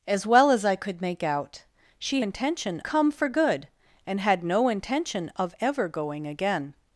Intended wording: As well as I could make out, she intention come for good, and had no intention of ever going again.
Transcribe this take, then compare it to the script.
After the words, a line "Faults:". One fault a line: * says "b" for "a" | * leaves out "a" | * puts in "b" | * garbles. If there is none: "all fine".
As well as I could make out, she intention come for good, and had no intention of ever going again.
Faults:
all fine